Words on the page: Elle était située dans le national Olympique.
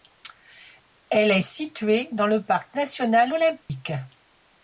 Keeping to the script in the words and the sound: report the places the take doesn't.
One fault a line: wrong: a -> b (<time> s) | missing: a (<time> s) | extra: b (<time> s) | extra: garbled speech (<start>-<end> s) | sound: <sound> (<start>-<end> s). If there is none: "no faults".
wrong: était -> est (1.3 s)
extra: parc (2.4 s)
sound: dropout (3.6-3.7 s)